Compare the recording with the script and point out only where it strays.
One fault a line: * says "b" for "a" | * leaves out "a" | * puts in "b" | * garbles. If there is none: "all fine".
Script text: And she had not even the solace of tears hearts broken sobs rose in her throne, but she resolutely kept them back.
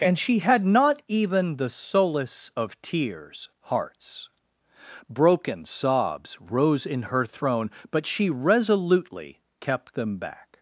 all fine